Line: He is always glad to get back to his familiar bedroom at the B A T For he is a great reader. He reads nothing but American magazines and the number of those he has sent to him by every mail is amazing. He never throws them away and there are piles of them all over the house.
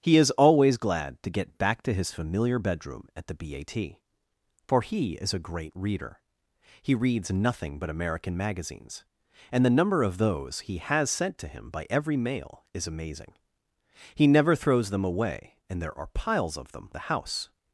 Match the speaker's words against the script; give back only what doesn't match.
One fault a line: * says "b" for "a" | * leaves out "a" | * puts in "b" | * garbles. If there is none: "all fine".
* leaves out "all over"